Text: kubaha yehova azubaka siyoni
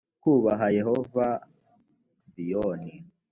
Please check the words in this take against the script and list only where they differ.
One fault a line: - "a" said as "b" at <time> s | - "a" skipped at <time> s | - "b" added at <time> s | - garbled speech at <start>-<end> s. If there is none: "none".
- "azubaka" skipped at 1.3 s